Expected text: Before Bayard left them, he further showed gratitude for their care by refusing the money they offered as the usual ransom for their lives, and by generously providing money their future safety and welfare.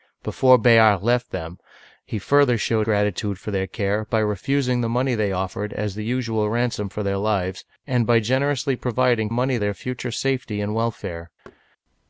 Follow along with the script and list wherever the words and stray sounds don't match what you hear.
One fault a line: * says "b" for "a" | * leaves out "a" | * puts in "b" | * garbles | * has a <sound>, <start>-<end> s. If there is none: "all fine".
* has a thud, 11.4-11.6 s